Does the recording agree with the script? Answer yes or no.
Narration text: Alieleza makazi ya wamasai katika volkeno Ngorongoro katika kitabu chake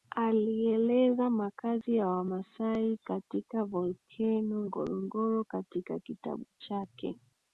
yes